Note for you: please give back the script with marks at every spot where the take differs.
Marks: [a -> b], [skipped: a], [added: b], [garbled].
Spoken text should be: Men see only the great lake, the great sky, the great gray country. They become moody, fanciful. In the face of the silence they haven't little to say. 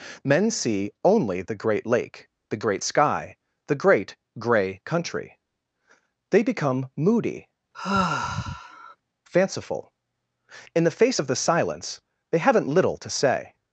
Men see only the great lake, the great sky, the great gray country. They become moody, fanciful. In the face of the silence they haven't little to say.